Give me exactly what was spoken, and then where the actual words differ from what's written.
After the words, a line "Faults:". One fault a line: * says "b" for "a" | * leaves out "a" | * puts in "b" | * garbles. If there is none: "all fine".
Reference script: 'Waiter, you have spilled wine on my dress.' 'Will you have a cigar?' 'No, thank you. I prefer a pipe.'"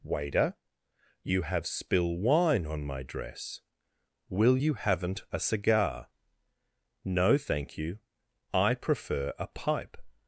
'Waiter, you have spill wine on my dress.' 'Will you haven't a cigar?' 'No, thank you. I prefer a pipe.'"
Faults:
* says "spill" for "spilled"
* says "haven't" for "have"